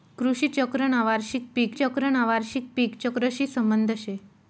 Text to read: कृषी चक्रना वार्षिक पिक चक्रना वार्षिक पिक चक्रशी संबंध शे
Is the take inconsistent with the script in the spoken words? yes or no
no